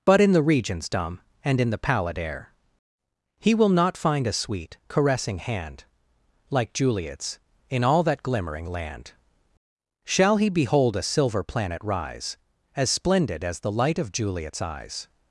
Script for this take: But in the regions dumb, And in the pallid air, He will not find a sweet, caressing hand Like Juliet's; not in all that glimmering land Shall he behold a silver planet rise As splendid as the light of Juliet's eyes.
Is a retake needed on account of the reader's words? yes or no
yes